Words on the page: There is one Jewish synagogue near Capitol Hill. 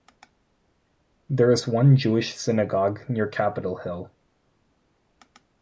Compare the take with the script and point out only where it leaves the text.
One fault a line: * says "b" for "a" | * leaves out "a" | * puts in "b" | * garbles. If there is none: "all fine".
all fine